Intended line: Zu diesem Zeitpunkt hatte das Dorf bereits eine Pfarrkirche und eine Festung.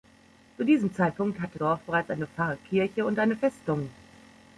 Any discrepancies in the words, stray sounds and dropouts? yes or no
yes